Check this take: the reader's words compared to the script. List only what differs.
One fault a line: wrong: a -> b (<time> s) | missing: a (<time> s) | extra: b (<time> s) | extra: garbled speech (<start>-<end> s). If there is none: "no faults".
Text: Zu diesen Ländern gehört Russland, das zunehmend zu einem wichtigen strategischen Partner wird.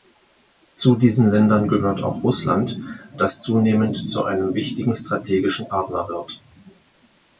extra: auch (2.0 s)